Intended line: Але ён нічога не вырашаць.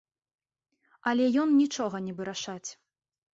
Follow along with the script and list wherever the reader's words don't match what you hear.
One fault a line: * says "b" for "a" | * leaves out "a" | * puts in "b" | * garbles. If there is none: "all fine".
all fine